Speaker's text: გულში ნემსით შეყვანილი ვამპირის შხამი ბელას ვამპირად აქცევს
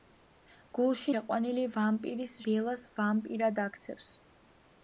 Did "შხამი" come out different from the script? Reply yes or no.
yes